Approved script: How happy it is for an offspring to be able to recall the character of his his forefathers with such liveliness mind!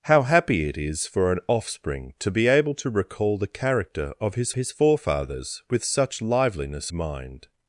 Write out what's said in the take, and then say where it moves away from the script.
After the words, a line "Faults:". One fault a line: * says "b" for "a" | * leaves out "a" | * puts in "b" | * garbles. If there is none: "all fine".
How happy it is for an offspring to be able to recall the character of his his forefathers with such liveliness mind!
Faults:
all fine